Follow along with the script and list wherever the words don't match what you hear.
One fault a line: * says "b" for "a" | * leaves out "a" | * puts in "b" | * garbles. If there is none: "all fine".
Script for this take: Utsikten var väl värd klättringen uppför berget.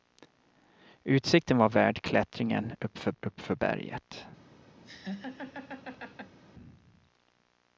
* leaves out "väl"
* puts in "uppför"